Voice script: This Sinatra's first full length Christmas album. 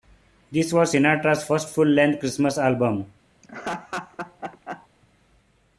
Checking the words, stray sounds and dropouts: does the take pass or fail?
fail